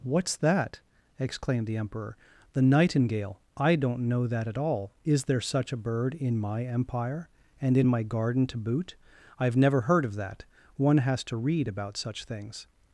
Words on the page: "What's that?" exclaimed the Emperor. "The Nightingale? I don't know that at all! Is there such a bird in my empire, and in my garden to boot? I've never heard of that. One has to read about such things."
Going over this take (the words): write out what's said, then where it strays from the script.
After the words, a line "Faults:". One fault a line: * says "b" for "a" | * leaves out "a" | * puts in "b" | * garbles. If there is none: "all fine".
"What's that?" exclaimed the Emperor. "The Nightingale? I don't know that at all! Is there such a bird in my empire, and in my garden to boot? I've never heard of that. One has to read about such things."
Faults:
all fine